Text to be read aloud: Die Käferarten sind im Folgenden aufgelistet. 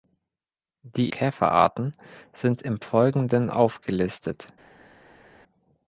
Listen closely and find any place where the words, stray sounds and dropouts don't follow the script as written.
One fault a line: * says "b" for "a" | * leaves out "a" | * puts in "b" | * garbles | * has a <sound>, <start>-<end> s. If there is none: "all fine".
all fine